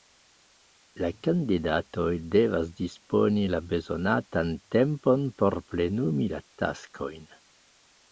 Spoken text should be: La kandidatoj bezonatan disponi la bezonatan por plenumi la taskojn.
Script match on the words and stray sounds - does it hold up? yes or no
no